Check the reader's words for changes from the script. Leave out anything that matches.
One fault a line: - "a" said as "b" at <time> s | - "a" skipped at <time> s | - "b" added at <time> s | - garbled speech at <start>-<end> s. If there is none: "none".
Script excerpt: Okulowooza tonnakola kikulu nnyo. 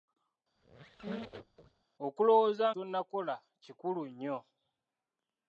none